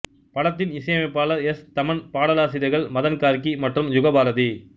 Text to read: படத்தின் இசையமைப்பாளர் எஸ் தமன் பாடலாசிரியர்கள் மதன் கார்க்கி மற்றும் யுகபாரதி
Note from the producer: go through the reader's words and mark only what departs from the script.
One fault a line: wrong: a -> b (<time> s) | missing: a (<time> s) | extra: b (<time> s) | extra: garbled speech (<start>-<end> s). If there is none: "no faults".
no faults